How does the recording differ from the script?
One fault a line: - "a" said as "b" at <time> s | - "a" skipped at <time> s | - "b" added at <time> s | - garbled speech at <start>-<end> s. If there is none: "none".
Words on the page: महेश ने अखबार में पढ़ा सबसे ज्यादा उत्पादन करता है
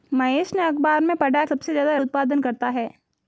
none